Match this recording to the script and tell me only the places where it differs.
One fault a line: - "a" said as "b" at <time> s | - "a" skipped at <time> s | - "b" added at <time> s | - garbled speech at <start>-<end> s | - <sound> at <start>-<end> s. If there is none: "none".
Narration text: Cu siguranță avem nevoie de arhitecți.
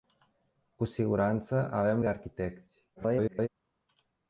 - "nevoie" skipped at 2.0 s
- garbled speech at 3.0-3.5 s